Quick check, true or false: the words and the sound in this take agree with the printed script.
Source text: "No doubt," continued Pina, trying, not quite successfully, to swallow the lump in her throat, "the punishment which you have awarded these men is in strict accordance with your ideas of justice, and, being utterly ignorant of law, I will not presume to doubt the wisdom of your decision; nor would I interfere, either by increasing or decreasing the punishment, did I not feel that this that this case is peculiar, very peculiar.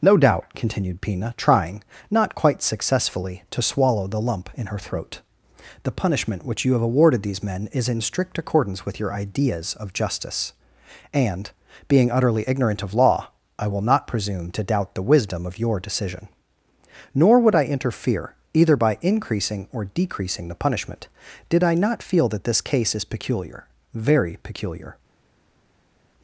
false